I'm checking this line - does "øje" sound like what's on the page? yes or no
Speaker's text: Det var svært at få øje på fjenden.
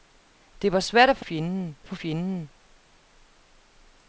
no